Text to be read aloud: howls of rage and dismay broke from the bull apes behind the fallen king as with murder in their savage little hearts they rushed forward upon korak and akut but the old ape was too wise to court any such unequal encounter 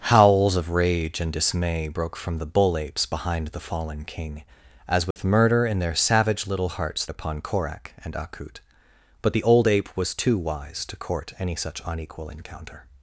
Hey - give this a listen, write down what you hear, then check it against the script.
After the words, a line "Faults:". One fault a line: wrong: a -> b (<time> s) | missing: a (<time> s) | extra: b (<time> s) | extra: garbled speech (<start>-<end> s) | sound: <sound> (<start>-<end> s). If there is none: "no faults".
howls of rage and dismay broke from the bull apes behind the fallen king as with murder in their savage little hearts upon korak and akut but the old ape was too wise to court any such unequal encounter
Faults:
sound: dropout (5.1-5.2 s)
missing: they rushed forward (7.0 s)